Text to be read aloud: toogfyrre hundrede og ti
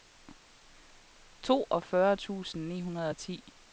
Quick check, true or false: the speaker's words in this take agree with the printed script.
false